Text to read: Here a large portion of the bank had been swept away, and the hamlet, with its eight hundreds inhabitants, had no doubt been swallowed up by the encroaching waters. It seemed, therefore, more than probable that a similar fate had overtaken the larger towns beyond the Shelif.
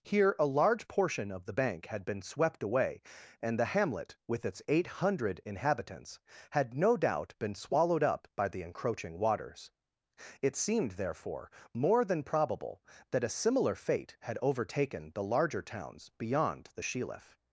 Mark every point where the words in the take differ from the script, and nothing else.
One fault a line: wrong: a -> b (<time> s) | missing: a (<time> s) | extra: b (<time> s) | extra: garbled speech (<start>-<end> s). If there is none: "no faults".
wrong: hundreds -> hundred (4.9 s)